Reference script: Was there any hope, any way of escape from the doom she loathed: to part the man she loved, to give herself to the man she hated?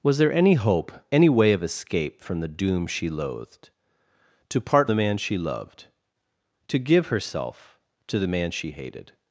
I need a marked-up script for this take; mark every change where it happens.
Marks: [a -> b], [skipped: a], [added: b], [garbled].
Was there any hope, any way of escape from the doom she loathed: to part the man she loved, to give herself to the man she hated?